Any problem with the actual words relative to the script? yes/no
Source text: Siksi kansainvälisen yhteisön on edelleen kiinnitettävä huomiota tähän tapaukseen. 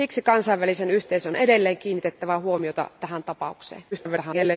yes